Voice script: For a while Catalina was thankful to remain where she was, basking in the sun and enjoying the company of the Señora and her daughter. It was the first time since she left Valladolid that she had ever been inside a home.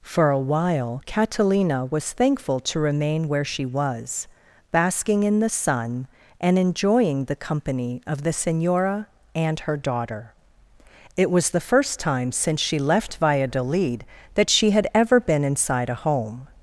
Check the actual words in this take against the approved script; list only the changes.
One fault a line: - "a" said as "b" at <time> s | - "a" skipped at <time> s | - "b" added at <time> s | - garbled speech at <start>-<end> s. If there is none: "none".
none